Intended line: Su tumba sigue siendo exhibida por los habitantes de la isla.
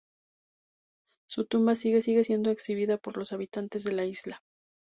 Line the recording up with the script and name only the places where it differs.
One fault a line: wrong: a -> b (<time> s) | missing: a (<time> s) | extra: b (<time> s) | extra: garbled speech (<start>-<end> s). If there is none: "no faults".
extra: sigue (2.0 s)